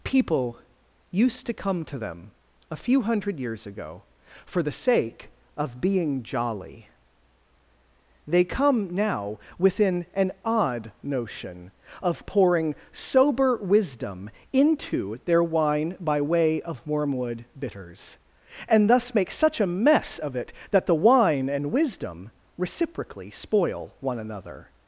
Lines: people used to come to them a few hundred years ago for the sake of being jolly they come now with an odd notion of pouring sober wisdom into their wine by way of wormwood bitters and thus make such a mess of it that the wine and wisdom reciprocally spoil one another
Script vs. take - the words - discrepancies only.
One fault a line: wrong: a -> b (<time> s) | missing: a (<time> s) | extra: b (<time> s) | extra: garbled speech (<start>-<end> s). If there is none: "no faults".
wrong: with -> within (9.6 s)